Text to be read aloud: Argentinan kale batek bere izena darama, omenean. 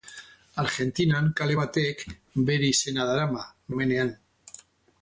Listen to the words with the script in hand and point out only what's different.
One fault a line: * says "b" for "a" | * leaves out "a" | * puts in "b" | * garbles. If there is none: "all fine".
all fine